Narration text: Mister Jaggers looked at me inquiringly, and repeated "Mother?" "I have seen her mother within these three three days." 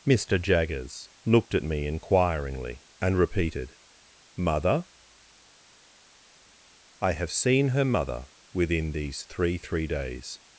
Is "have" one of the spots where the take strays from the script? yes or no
no